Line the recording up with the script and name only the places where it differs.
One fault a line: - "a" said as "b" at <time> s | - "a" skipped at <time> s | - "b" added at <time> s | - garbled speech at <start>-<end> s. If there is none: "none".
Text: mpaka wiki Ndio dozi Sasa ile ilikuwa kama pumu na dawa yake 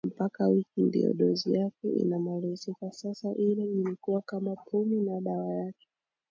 - "yake inamalizika" added at 1.5 s